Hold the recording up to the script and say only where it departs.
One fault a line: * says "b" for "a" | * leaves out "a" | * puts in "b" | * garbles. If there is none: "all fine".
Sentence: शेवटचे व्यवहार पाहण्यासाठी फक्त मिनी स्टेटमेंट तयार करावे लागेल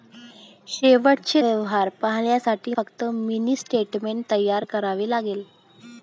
all fine